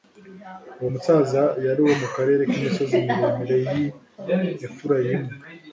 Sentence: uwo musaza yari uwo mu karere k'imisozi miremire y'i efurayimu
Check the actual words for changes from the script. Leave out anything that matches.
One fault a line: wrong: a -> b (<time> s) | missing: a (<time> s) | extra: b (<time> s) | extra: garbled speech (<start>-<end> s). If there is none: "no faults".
no faults